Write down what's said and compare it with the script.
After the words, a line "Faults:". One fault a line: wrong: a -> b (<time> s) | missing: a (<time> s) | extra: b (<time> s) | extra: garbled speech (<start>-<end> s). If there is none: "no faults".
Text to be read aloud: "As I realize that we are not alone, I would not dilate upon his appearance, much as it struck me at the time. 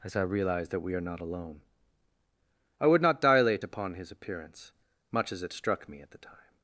"As I realize that we are not alone, I would not dilate upon his appearance, much as it struck me at the time.
Faults:
no faults